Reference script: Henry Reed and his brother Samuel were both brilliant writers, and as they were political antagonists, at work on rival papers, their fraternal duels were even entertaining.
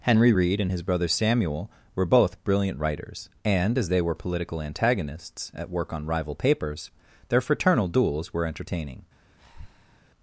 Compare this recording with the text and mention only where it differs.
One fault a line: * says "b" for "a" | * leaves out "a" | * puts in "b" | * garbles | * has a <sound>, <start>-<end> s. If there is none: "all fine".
* leaves out "even"
* has a breath, 9.4-10.0 s